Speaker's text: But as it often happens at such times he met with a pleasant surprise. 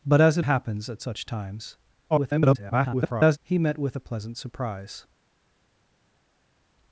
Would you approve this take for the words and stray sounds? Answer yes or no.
no